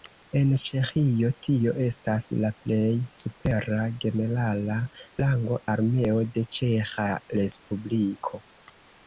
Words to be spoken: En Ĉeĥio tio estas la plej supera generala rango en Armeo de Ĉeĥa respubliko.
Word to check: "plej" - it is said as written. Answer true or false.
true